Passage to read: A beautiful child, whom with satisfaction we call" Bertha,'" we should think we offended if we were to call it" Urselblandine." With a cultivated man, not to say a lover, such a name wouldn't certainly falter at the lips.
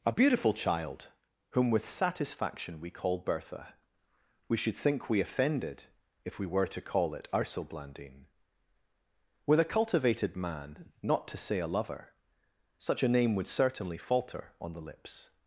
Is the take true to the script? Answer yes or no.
no